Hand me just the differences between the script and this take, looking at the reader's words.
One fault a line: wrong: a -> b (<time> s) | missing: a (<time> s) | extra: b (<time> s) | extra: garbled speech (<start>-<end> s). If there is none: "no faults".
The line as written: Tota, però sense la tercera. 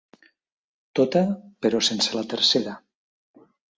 no faults